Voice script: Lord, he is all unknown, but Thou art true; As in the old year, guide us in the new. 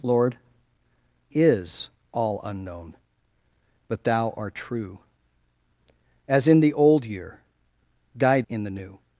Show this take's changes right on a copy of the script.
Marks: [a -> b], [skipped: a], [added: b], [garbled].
Lord, [skipped: he] is all unknown, but Thou art true; As in the old year, guide [skipped: us] in the new.